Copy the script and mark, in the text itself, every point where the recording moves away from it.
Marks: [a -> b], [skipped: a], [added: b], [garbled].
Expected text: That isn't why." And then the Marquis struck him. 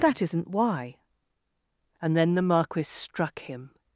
That isn't why." And then the Marquis struck him.